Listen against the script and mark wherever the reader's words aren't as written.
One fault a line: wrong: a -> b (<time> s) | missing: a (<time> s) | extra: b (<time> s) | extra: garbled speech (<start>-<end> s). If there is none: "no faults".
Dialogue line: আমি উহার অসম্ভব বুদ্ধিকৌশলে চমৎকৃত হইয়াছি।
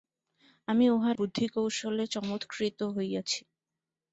missing: অসম্ভব (1.2 s)